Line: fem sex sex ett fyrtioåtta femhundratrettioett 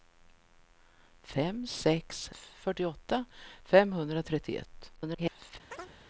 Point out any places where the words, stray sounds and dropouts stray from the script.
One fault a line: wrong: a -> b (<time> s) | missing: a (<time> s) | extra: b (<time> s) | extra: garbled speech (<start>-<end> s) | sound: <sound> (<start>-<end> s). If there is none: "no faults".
missing: sex ett (2.3 s)
extra: garbled speech (5.0-5.6 s)
sound: chirp (5.7-5.9 s)